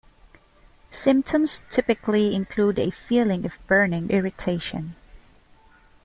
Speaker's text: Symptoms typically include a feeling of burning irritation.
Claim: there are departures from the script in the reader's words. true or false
false